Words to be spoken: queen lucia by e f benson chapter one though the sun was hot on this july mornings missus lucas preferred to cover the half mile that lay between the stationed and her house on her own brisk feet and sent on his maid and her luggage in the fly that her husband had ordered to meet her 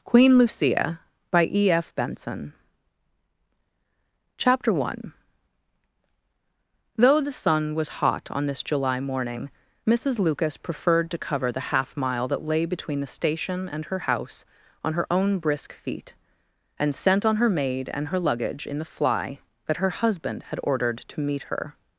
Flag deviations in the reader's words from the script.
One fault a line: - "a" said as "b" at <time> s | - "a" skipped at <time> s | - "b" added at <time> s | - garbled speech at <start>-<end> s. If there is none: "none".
- "mornings" said as "morning" at 9.0 s
- "stationed" said as "station" at 13.1 s
- "his" said as "her" at 17.4 s